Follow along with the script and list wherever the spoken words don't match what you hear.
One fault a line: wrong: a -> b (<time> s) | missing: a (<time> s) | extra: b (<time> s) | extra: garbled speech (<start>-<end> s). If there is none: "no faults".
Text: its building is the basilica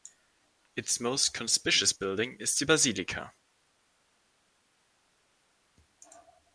extra: most conspicuous (1.0 s)